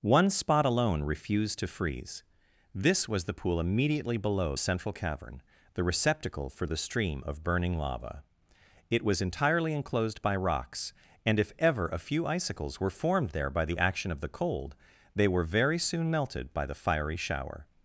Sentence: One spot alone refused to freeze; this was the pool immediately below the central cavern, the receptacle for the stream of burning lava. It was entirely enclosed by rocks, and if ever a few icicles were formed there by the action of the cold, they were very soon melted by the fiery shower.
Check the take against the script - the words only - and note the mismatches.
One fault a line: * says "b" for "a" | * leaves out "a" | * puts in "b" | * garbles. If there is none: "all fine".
* leaves out "the"